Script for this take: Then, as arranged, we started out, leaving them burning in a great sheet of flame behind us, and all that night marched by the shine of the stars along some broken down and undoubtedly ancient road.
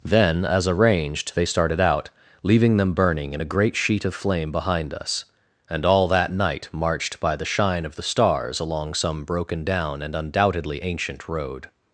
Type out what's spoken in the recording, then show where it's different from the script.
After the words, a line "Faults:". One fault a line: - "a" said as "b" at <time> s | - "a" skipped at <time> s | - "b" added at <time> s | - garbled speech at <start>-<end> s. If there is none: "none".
Then, as arranged, they started out, leaving them burning in a great sheet of flame behind us, and all that night marched by the shine of the stars along some broken down and undoubtedly ancient road.
Faults:
- "we" said as "they" at 1.4 s